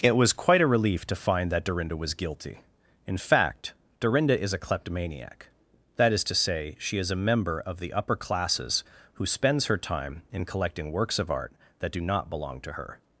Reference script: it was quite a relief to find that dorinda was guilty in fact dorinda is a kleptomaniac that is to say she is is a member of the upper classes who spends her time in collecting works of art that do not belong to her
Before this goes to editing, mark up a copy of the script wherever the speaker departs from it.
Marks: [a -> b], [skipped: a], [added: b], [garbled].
it was quite a relief to find that dorinda was guilty in fact dorinda is a kleptomaniac that is to say she is [skipped: is] a member of the upper classes who spends her time in collecting works of art that do not belong to her